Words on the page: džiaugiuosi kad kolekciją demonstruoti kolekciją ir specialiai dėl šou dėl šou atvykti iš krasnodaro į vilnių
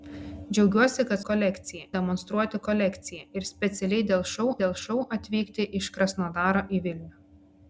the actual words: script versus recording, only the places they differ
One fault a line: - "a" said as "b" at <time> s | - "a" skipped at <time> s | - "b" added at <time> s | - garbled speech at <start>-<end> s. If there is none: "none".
none